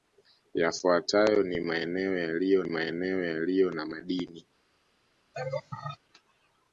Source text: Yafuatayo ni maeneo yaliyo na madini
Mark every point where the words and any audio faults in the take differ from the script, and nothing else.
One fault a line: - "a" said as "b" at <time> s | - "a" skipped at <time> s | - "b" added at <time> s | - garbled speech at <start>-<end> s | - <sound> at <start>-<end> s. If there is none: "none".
- "maeneo yaliyo" added at 2.6 s
- laugh at 5.3-6.0 s